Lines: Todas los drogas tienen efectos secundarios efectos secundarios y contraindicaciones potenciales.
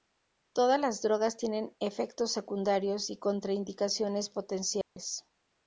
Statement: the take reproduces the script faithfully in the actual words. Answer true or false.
false